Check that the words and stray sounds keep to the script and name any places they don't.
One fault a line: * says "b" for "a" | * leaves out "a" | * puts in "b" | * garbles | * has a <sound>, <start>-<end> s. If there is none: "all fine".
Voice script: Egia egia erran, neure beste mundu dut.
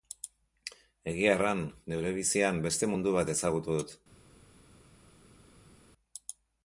* leaves out "egia"
* puts in "bizian"
* puts in "bat ezagutu"